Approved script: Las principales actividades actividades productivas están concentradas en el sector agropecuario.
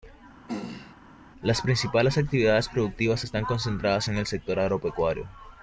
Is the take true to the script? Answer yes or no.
no